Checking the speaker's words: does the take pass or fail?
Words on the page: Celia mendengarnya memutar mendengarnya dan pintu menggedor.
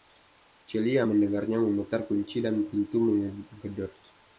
fail